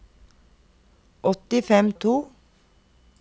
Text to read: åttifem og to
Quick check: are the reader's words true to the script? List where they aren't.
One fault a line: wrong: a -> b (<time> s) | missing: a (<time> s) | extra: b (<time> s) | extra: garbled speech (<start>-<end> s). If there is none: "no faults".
no faults